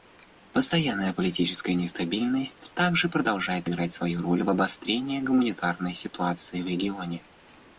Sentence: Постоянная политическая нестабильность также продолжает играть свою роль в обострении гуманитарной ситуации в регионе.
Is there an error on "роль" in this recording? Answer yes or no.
no